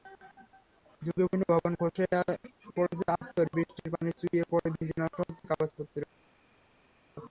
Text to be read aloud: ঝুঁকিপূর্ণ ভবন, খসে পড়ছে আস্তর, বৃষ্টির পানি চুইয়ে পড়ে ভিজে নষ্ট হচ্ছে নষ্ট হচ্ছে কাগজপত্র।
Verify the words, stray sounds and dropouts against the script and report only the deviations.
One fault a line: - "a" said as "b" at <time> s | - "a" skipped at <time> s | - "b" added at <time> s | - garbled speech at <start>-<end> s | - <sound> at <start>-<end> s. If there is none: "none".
- "নষ্ট হচ্ছে" skipped at 5.4 s